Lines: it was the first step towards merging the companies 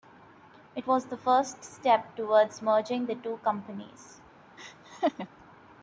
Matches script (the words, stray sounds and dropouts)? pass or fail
fail